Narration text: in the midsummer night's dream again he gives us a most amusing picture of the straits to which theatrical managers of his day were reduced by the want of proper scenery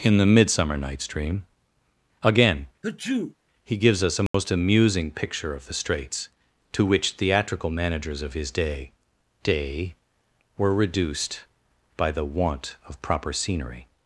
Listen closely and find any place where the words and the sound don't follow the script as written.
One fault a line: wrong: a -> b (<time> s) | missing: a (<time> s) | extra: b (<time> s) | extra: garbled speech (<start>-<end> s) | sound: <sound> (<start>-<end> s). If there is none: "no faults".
sound: sneeze (2.8-3.3 s)
sound: dropout (4.3-4.3 s)
extra: day (9.4 s)